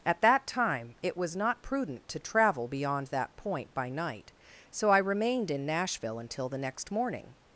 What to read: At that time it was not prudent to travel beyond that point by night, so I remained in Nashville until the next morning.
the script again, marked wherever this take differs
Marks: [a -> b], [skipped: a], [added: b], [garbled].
At that time it was not prudent to travel beyond that point by night, so I remained in Nashville until the next morning.